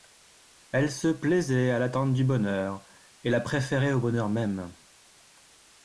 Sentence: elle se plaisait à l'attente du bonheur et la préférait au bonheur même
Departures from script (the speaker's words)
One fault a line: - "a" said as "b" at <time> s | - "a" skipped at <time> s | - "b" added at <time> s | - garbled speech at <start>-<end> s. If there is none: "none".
none